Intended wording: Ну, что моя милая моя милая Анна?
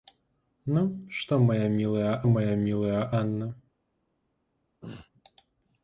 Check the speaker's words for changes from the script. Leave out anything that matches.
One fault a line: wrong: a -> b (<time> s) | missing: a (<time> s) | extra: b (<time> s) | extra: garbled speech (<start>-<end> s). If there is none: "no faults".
no faults